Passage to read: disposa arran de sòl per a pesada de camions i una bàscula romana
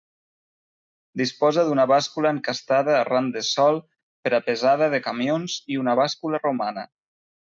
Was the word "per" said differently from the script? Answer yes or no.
no